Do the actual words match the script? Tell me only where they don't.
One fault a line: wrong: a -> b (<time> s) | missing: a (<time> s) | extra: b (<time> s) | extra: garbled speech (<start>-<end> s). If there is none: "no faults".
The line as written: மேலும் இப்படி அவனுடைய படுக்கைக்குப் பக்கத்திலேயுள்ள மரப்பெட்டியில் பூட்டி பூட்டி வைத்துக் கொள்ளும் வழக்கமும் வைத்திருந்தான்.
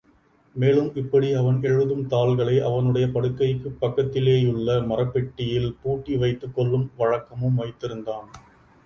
extra: அவன் எழுதும் தாள்களை (1.3 s)
missing: பூட்டி (6.2 s)